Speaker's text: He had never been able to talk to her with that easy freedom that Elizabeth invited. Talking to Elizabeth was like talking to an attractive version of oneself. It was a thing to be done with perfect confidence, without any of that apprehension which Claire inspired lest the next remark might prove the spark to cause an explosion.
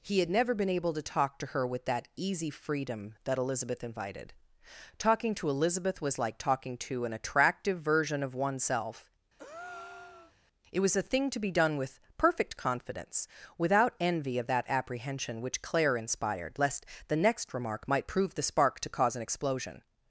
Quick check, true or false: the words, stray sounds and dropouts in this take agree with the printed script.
false